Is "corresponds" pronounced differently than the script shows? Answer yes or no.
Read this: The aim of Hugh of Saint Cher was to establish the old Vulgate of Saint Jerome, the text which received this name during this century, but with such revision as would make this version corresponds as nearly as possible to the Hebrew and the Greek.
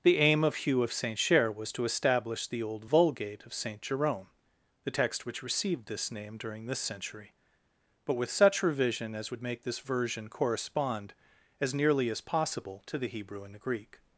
yes